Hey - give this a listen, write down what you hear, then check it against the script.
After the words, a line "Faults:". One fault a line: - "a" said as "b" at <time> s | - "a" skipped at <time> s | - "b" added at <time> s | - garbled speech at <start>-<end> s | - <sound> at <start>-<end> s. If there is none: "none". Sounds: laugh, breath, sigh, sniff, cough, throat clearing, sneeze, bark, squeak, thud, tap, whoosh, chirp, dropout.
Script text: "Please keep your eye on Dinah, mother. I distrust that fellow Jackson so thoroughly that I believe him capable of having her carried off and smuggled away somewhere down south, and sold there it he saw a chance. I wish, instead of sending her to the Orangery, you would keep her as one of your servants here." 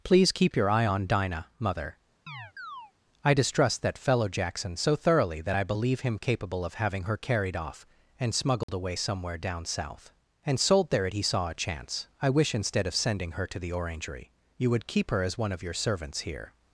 "Please keep your eye on Dinah, mother. I distrust that fellow Jackson so thoroughly that I believe him capable of having her carried off and smuggled away somewhere down south, and sold there it he saw a chance. I wish, instead of sending her to the Orangery, you would keep her as one of your servants here."
Faults:
- chirp at 2.3-2.9 s
- dropout at 8.6-8.7 s